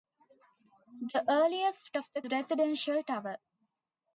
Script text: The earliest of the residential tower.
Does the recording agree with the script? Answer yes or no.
yes